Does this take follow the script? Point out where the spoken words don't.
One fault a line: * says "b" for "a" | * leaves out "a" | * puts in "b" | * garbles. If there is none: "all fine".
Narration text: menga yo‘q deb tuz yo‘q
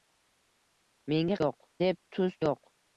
all fine